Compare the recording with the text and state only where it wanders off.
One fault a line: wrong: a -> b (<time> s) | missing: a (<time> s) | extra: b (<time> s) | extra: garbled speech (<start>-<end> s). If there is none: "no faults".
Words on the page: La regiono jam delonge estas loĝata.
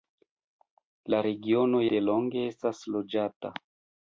missing: jam (1.9 s)